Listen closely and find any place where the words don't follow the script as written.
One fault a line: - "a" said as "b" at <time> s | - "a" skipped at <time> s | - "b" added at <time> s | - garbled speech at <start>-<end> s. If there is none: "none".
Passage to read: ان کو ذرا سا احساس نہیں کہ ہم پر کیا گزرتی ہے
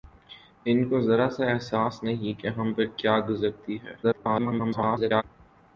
- garbled speech at 4.0-5.2 s